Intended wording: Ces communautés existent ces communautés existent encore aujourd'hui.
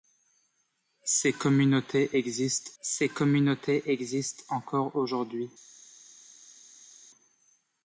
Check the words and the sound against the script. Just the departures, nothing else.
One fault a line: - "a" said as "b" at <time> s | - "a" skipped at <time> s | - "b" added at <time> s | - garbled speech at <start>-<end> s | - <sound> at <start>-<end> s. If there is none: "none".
none